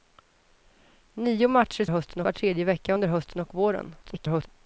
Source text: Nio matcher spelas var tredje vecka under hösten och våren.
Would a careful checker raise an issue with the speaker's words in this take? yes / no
yes